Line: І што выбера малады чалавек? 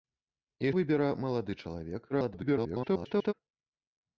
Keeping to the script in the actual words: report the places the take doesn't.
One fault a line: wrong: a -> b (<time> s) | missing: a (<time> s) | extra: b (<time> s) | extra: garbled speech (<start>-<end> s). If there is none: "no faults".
missing: што (0.7 s)
extra: garbled speech (2.1-3.3 s)